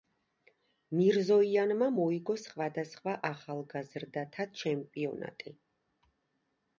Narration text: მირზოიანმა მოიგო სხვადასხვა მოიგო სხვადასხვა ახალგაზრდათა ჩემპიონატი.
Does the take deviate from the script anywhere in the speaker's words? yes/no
yes